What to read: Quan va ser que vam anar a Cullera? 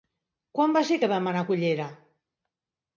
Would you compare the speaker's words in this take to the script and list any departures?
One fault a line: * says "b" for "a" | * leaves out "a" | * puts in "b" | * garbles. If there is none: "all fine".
all fine